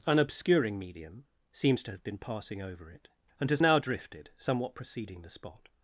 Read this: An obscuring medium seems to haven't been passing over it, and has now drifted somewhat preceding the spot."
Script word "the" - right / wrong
right